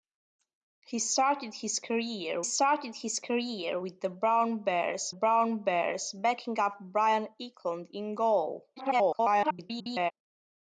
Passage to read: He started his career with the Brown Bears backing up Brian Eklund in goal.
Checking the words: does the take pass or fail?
fail